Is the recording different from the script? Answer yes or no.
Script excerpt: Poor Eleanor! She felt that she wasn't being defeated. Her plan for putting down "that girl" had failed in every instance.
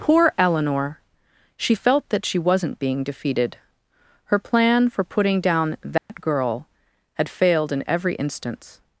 no